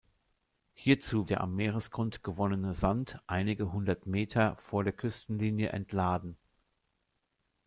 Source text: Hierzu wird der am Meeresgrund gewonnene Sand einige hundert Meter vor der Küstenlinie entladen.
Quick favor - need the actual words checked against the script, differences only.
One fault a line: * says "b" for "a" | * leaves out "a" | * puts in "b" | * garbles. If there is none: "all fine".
* leaves out "wird"